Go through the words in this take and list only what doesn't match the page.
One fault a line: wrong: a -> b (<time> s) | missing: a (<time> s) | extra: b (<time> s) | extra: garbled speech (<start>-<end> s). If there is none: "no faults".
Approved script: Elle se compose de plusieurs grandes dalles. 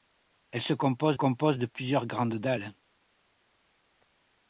extra: compose (1.1 s)